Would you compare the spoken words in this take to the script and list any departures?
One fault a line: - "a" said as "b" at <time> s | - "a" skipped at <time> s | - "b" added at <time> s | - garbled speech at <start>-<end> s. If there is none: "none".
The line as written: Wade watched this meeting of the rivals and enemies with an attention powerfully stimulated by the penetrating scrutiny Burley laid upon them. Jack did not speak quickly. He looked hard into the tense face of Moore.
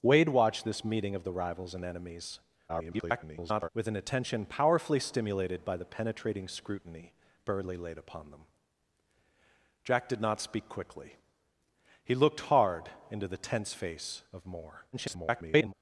- garbled speech at 2.7-3.7 s
- garbled speech at 14.9-15.7 s